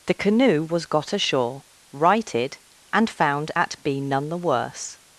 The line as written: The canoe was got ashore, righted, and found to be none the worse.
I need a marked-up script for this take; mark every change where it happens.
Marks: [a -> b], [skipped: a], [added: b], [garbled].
The canoe was got ashore, righted, and found [to -> at] be none the worse.